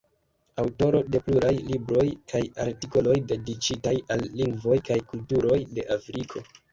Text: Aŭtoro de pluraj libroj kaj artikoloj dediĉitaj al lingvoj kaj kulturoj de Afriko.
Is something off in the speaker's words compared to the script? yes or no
no